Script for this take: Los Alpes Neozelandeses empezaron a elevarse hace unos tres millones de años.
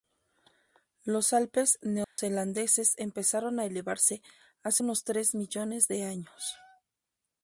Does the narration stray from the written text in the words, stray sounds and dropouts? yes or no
yes